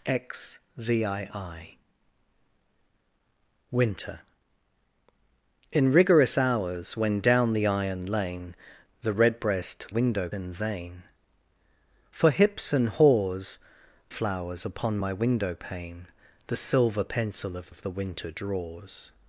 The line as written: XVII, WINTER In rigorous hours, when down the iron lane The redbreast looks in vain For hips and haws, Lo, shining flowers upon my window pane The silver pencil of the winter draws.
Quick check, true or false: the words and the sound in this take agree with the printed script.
false